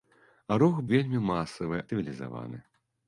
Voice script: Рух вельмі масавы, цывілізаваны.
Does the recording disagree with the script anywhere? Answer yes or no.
no